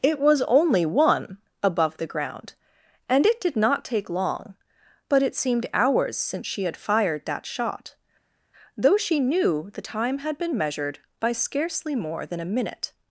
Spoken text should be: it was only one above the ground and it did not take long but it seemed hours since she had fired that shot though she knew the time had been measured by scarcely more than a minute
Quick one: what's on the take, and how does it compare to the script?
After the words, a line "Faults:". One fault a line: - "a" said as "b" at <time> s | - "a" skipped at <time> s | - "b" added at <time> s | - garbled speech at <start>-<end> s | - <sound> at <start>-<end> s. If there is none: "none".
it was only one above the ground and it did not take long but it seemed hours since she had fired that shot though she knew the time had been measured by scarcely more than a minute
Faults:
none